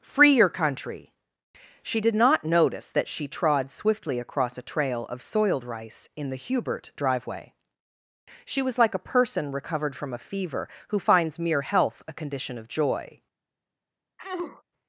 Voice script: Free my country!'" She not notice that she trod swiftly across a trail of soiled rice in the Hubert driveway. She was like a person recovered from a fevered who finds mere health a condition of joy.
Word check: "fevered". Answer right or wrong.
wrong